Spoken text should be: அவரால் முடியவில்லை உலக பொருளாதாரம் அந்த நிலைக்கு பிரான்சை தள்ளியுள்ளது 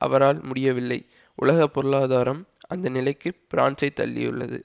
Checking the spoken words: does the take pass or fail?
pass